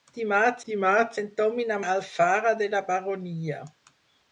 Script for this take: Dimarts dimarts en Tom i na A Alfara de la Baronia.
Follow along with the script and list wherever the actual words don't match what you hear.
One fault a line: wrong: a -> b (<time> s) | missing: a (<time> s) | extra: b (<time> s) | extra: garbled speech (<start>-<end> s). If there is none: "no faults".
no faults